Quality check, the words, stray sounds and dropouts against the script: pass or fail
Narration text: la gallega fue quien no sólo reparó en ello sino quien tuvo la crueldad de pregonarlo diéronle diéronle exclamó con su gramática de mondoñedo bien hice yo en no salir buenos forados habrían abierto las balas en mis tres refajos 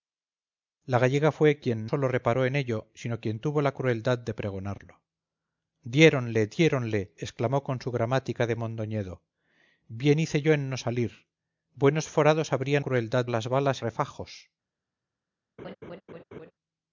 fail